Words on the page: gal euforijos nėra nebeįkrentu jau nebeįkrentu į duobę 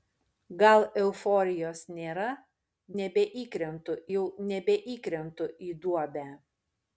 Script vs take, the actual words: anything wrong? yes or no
no